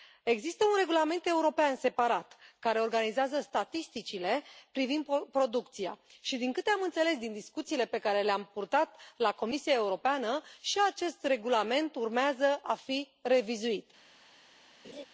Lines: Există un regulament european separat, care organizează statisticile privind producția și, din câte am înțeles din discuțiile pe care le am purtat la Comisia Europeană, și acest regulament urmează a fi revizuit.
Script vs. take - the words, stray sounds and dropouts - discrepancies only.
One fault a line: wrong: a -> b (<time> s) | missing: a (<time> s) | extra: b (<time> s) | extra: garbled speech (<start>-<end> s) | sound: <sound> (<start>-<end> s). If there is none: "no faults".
sound: laugh (14.8-15.1 s)